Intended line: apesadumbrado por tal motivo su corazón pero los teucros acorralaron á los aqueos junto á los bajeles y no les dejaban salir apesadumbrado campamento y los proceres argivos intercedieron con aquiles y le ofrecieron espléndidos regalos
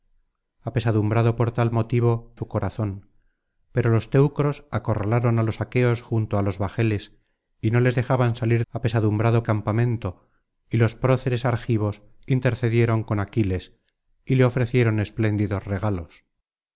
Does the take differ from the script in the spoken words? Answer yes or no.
no